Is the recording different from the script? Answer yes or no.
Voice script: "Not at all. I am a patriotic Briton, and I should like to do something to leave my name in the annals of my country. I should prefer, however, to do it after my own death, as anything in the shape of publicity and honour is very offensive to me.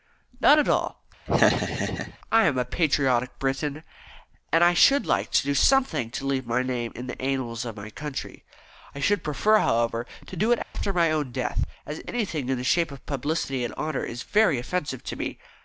no